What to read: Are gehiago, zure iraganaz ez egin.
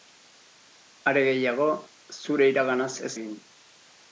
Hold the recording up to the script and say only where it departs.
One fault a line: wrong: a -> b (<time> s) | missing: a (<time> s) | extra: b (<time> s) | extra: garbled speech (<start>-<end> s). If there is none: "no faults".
no faults